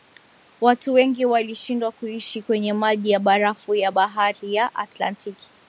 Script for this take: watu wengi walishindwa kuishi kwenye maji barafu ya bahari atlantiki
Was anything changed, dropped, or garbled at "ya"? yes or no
no